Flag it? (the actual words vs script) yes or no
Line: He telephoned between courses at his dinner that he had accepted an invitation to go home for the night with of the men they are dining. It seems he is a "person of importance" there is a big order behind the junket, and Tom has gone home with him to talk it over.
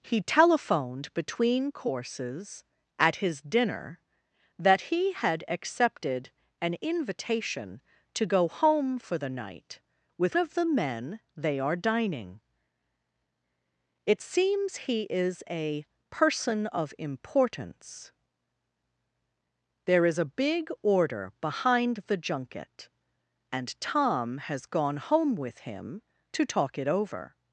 no